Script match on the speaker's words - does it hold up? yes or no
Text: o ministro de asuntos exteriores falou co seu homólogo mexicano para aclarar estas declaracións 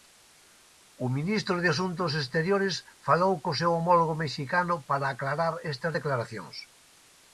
yes